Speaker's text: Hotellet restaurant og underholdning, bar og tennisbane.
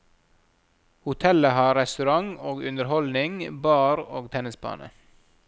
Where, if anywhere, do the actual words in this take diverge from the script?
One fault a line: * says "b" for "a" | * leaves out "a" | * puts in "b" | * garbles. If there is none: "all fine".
* puts in "har"